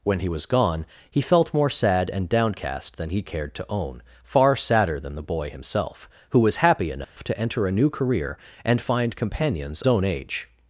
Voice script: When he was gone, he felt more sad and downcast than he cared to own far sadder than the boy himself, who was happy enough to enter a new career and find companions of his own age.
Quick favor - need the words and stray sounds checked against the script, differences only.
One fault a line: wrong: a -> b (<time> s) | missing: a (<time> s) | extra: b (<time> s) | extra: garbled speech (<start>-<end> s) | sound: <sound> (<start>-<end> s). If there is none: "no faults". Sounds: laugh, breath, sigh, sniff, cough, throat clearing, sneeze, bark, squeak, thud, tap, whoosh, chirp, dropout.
sound: dropout (7.0-7.2 s)
missing: of his (9.8 s)